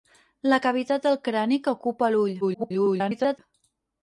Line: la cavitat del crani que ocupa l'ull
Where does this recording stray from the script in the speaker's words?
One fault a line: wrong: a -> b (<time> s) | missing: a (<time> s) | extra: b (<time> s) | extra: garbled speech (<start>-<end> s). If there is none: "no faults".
extra: garbled speech (2.4-3.4 s)